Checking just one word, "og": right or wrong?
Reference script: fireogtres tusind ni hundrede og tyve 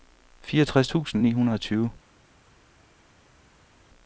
right